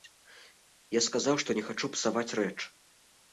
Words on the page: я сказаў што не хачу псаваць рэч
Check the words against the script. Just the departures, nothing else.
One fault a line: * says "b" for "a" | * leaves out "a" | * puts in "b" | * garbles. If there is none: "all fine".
all fine